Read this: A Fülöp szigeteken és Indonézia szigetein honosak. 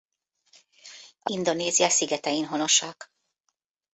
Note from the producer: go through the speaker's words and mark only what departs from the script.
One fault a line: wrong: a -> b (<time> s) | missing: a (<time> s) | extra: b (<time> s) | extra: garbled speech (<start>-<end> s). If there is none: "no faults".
missing: Fülöp szigeteken és (1.3 s)